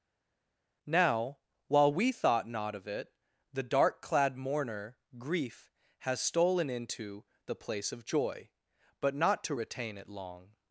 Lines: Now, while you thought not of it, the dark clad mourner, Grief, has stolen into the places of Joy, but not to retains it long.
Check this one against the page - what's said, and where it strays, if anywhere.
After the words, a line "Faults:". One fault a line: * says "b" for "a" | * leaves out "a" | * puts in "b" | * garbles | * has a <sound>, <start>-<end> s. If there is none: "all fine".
Now, while we thought not of it, the dark clad mourner, Grief, has stolen into the place of Joy, but not to retain it long.
Faults:
* says "we" for "you"
* says "place" for "places"
* says "retain" for "retains"